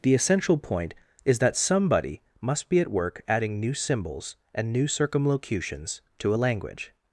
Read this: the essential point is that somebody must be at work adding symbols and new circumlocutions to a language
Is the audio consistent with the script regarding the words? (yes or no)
no